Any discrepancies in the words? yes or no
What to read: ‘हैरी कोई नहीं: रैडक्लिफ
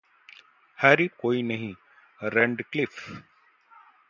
no